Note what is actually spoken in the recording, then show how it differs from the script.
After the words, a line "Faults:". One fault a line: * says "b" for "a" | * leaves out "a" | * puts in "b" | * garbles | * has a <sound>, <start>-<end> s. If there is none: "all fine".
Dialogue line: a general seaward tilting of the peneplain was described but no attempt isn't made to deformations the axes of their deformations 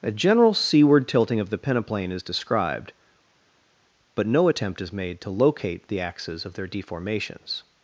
a general seaward tilting of the peneplain is described but no attempt is made to locate the axes of their deformations
Faults:
* says "is" for "was"
* says "is" for "isn't"
* says "locate" for "deformations"